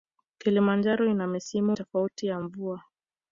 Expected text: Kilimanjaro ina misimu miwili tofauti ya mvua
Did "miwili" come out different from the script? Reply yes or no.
yes